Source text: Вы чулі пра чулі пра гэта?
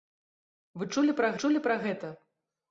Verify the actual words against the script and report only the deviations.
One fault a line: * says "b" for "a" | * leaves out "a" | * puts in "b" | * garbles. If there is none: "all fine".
all fine